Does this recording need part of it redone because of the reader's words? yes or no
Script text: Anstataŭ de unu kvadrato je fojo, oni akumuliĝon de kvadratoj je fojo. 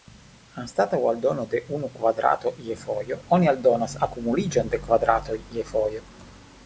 yes